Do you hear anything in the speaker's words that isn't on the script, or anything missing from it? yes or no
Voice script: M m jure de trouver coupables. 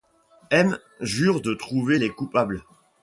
yes